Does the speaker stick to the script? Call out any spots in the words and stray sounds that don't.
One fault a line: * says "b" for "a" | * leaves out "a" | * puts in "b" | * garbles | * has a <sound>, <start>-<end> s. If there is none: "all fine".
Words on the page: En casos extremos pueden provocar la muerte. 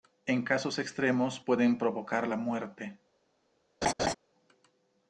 * has a laugh, 3.8-4.1 s